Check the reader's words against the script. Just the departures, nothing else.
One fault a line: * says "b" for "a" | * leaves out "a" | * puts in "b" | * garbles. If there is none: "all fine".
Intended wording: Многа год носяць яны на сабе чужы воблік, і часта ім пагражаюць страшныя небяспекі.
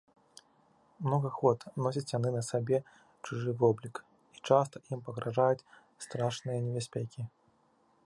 all fine